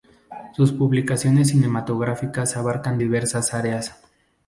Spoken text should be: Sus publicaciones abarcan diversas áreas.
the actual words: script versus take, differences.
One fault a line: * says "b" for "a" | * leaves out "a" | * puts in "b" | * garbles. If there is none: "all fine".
* puts in "cinematográficas"